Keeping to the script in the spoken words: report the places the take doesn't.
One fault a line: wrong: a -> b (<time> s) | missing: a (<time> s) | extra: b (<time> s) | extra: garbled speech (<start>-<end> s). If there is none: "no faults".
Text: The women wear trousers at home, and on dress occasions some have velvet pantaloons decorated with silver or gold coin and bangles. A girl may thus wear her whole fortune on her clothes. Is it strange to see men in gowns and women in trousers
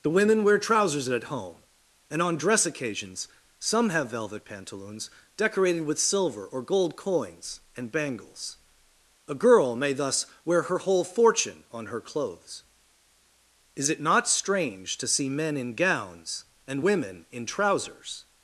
wrong: coin -> coins (7.0 s)
extra: not (14.0 s)